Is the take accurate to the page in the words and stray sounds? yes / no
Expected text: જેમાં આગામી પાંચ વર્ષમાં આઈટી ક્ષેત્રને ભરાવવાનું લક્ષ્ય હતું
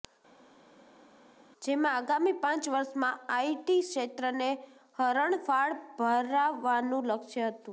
no